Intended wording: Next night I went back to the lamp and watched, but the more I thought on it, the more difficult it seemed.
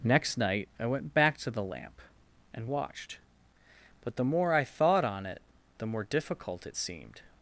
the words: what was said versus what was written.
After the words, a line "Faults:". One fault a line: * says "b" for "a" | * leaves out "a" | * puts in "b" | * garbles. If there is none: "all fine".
Next night I went back to the lamp and watched, but the more I thought on it, the more difficult it seemed.
Faults:
all fine